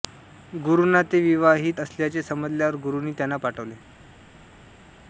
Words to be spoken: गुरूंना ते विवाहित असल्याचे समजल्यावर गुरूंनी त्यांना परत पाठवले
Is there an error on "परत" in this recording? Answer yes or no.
yes